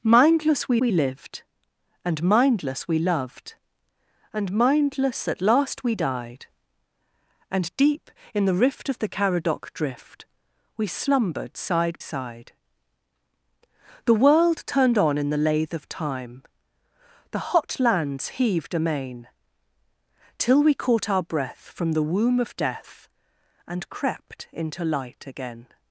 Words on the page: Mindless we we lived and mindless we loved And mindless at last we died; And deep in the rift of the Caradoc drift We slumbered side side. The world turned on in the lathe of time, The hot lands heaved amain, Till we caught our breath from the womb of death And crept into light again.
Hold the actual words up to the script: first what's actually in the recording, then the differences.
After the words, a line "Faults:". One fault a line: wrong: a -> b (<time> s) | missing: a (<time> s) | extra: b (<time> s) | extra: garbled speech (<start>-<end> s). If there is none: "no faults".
Mindless we we lived and mindless we loved And mindless at last we died; And deep in the rift of the Caradoc drift We slumbered side side. The world turned on in the lathe of time, The hot lands heaved amain, Till we caught our breath from the womb of death And crept into light again.
Faults:
no faults